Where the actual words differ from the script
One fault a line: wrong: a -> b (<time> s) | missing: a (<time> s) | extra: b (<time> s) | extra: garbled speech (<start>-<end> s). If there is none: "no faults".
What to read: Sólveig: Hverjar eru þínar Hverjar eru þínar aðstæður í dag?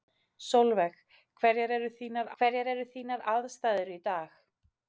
no faults